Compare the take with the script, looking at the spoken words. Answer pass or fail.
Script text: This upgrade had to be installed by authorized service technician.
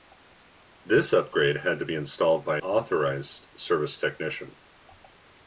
pass